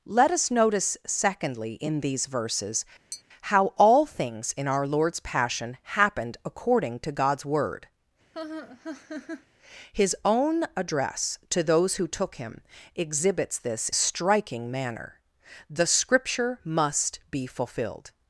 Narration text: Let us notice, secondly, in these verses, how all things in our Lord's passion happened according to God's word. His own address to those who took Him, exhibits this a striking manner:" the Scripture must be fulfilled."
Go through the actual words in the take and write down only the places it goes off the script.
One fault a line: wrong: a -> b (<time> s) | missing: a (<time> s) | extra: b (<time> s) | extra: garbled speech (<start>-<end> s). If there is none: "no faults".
no faults